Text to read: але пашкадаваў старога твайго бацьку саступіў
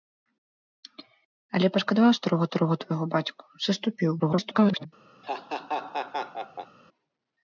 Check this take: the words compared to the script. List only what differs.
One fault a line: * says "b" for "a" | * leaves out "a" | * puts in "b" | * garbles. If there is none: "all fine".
* puts in "старога"
* garbles